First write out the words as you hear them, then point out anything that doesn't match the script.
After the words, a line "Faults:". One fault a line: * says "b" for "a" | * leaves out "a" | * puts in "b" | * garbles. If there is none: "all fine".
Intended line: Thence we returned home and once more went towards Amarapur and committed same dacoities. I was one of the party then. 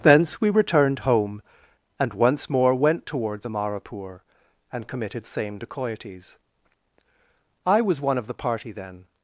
Thence we returned home and once more went towards Amarapur and committed same dacoities. I was one of the party then.
Faults:
all fine